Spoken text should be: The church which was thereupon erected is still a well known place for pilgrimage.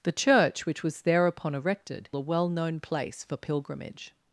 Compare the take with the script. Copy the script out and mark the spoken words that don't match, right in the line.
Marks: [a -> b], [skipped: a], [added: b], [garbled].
The church which was thereupon erected [skipped: is still] a well known place for pilgrimage.